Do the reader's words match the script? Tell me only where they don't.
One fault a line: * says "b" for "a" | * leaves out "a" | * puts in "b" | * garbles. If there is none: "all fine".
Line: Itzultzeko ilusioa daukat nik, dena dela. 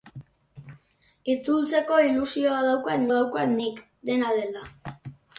* puts in "daukat"